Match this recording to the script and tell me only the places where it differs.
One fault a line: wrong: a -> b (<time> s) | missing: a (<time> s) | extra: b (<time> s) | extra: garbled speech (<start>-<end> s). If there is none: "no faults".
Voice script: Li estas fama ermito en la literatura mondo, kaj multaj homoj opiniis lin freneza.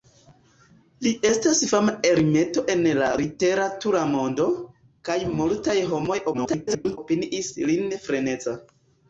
extra: garbled speech (6.3-7.0 s)